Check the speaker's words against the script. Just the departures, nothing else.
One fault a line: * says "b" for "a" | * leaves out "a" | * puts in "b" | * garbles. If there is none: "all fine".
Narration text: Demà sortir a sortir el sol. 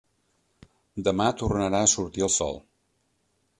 * says "tornarà" for "sortir"